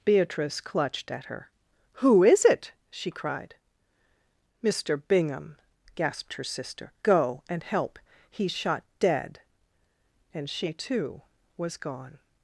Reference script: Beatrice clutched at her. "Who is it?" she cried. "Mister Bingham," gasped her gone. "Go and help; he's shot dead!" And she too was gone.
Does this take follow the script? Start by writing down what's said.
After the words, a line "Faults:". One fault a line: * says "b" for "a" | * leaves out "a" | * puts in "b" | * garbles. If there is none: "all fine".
Beatrice clutched at her. "Who is it?" she cried. "Mister Bingham," gasped her sister. "Go and help; he's shot dead!" And she too was gone.
Faults:
* says "sister" for "gone"